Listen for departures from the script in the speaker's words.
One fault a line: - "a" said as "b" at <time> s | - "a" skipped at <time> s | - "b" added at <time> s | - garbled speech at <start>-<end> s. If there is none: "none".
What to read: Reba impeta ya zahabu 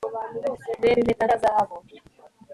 none